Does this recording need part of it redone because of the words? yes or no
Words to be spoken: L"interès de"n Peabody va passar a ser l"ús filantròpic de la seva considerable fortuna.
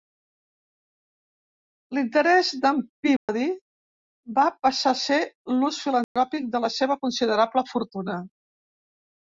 no